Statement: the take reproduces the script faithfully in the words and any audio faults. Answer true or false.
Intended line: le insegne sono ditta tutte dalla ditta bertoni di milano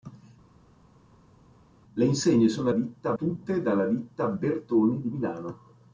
true